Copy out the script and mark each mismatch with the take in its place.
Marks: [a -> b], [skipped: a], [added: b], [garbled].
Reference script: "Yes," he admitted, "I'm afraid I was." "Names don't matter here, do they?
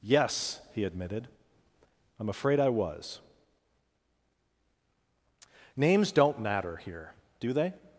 "Yes," he admitted, "I'm afraid I was." "Names don't matter here, do they?